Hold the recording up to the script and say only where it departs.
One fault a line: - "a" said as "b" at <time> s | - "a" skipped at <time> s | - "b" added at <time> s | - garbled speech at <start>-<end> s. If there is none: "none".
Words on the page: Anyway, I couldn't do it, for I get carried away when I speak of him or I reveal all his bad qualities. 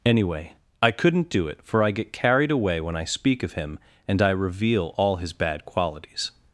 - "or" said as "and" at 4.1 s